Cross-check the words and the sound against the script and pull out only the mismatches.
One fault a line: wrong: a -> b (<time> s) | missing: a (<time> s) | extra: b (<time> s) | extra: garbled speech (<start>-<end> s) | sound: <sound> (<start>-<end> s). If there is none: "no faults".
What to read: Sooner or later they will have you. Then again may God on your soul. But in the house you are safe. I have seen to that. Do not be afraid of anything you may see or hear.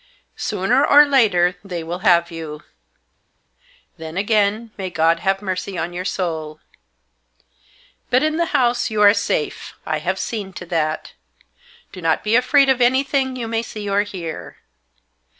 extra: have mercy (5.2 s)